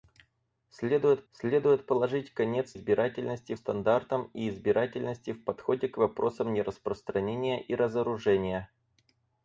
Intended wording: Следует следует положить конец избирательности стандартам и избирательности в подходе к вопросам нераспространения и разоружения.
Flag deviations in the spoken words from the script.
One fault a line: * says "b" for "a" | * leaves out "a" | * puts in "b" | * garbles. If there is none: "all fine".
all fine